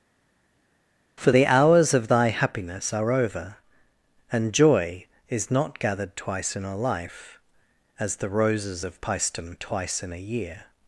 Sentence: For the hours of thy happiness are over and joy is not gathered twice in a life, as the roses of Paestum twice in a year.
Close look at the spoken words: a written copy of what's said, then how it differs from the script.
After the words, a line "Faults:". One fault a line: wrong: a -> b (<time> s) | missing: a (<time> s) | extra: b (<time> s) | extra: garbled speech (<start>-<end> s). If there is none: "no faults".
For the hours of thy happiness are over and joy is not gathered twice in a life, as the roses of Paestum twice in a year.
Faults:
no faults